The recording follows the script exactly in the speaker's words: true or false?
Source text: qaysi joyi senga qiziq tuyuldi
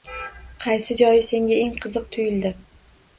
false